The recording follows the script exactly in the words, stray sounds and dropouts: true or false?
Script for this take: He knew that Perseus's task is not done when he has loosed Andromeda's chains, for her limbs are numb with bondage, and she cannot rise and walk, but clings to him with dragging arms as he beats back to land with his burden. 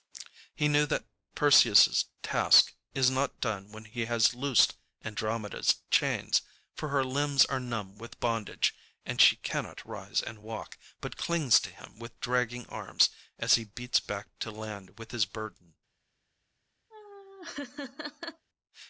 false